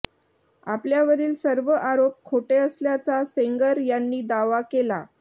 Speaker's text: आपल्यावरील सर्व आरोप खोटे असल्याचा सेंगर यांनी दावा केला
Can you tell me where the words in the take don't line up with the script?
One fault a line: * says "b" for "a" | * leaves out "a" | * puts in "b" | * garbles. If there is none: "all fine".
all fine